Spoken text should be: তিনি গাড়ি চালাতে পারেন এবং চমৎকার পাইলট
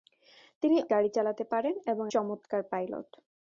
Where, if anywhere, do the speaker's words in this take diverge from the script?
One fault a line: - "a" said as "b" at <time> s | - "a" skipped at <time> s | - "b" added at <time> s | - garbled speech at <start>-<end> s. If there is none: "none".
none